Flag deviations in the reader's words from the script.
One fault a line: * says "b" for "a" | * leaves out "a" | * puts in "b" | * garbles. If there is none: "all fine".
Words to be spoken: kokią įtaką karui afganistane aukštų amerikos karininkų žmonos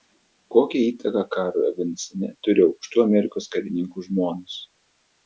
* puts in "turi"